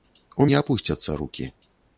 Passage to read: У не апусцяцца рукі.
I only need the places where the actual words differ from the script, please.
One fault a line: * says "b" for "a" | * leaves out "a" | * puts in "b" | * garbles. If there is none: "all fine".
all fine